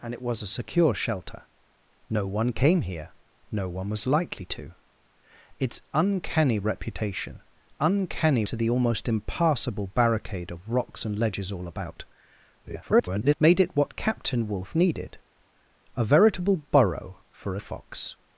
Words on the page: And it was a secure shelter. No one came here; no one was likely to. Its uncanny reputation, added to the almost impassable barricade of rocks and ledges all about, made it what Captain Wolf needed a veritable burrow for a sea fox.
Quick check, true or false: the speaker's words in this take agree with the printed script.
false